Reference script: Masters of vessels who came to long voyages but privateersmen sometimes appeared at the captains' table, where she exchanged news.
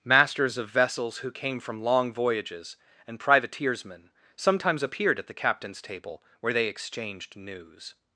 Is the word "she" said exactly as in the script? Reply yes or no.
no